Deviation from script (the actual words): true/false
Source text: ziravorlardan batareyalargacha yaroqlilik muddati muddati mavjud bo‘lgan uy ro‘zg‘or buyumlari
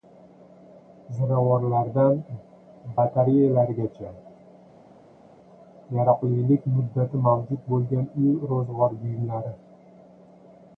true